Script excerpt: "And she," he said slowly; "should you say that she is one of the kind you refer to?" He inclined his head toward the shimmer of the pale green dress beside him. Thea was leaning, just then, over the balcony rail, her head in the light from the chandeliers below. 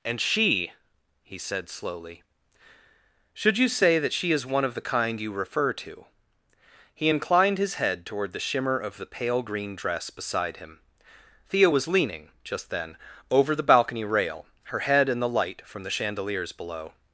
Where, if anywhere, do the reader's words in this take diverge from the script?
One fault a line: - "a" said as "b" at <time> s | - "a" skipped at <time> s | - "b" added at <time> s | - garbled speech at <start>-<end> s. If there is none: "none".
none